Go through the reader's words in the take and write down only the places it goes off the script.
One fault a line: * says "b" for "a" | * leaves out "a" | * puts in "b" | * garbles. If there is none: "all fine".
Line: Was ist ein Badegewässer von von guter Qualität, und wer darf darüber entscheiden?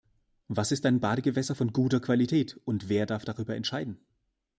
* leaves out "von"